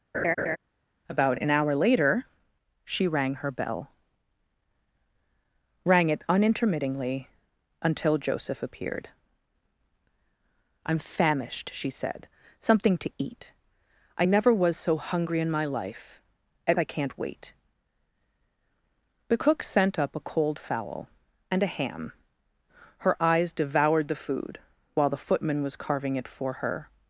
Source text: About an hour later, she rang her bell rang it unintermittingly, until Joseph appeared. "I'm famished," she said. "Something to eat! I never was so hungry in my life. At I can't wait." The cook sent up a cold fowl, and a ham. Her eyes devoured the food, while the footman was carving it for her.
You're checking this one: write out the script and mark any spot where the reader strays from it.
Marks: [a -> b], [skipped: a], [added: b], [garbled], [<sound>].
[laugh] About an hour later, she rang her bell rang it unintermittingly, until Joseph appeared. "I'm famished," she said. "Something to eat! I never was so hungry in my life. At I can't wait." The cook sent up a cold fowl, and a ham. Her eyes devoured the food, while the footman was carving it for her.